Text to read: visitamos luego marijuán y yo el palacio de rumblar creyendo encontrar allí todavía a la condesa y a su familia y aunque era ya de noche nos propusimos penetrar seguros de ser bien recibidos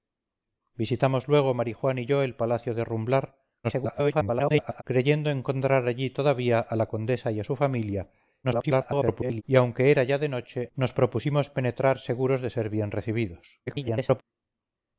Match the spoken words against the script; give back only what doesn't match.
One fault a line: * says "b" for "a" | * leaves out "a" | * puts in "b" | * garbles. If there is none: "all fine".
* garbles
* garbles
* garbles